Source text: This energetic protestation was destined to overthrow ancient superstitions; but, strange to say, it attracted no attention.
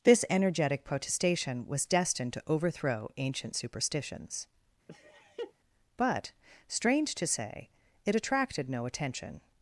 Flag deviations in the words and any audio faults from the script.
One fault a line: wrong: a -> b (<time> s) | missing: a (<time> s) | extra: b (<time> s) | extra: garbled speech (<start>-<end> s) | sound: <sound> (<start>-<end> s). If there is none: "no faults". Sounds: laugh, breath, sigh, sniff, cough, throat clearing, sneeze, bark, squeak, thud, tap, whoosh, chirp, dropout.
sound: laugh (4.9-5.5 s)